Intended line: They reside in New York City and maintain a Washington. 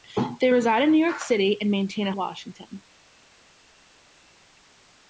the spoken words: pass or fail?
pass